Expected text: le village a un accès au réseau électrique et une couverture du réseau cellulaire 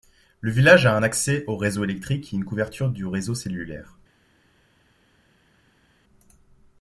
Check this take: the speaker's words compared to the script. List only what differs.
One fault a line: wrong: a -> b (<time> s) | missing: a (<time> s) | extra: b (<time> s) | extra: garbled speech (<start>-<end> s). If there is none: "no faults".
no faults